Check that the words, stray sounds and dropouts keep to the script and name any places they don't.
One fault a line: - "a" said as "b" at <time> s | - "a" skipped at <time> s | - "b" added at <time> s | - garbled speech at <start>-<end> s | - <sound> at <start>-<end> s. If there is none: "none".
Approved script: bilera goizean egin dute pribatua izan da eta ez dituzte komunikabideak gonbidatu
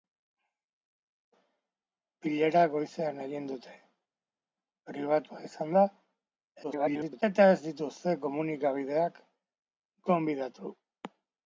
- garbled speech at 6.6-7.2 s